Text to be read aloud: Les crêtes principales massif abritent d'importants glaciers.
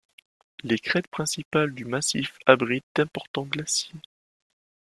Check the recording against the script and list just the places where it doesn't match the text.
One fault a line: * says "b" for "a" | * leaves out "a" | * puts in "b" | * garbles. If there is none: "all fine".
* puts in "du"